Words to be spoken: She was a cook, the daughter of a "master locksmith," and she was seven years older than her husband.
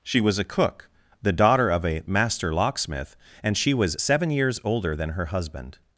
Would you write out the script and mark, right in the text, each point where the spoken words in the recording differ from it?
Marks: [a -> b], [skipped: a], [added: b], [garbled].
She was a cook, the daughter of a "master locksmith," and she was seven years older than her husband.